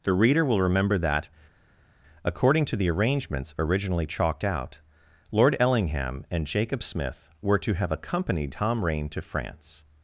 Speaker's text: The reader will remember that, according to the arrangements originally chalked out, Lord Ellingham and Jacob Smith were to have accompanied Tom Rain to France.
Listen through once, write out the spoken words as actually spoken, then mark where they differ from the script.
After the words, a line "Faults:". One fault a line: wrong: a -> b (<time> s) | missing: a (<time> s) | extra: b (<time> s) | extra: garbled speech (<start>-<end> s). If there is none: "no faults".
The reader will remember that, according to the arrangements originally chalked out, Lord Ellingham and Jacob Smith were to have accompanied Tom Rain to France.
Faults:
no faults